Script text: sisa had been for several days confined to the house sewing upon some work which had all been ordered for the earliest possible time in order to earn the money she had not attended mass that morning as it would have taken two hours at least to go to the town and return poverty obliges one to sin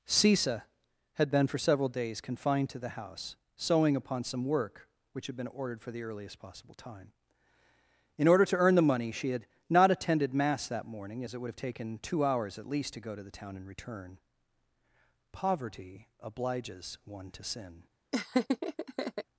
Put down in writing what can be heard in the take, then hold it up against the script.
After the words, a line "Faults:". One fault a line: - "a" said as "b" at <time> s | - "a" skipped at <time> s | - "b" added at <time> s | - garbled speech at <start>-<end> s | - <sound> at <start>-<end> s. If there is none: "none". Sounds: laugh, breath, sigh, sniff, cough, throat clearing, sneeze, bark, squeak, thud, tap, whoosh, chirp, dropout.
sisa had been for several days confined to the house sewing upon some work which had been ordered for the earliest possible time in order to earn the money she had not attended mass that morning as it would have taken two hours at least to go to the town and return poverty obliges one to sin
Faults:
- "all" skipped at 5.4 s
- laugh at 18.1-19.2 s